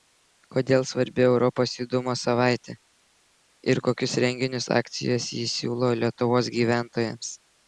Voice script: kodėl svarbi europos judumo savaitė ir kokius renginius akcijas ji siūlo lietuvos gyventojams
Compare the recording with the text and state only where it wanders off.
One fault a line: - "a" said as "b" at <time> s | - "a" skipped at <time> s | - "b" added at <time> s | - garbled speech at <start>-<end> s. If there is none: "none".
none